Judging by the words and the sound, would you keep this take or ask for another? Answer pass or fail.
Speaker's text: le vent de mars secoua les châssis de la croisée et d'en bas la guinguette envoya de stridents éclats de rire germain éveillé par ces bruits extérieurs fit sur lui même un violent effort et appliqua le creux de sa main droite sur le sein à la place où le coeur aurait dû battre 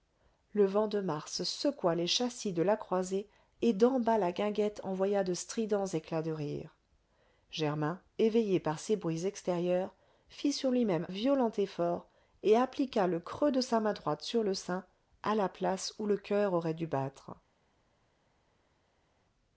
fail